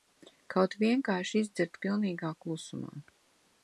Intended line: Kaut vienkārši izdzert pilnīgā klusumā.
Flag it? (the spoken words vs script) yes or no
no